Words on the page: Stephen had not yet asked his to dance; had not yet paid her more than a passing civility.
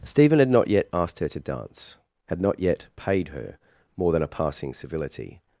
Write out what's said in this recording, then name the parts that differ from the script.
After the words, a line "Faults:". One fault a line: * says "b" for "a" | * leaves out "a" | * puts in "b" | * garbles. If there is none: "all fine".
Stephen had not yet asked her to dance; had not yet paid her more than a passing civility.
Faults:
* says "her" for "his"